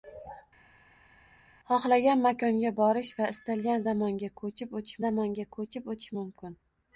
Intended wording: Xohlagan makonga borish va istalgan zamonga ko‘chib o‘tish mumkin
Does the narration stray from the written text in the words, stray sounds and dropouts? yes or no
yes